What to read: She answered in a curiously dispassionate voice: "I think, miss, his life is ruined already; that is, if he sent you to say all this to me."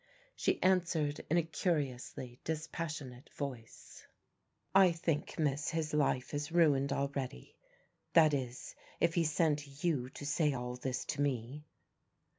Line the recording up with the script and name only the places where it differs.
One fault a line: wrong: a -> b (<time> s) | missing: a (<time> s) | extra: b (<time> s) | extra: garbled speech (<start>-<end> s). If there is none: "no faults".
no faults